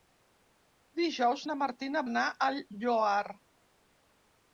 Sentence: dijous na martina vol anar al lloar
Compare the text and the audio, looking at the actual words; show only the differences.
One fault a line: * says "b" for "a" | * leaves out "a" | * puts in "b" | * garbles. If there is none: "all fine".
* leaves out "vol"